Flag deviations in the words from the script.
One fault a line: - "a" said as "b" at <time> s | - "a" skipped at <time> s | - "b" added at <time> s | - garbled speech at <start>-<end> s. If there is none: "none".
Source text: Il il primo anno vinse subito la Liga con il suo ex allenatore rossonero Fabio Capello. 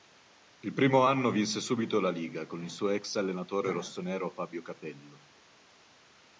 - "il" skipped at 0.7 s